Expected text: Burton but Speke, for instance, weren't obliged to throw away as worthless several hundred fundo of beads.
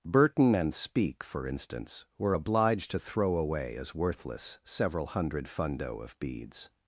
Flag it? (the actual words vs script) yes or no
yes